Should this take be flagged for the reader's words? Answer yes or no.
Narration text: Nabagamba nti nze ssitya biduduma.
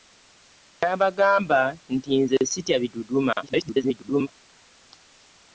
yes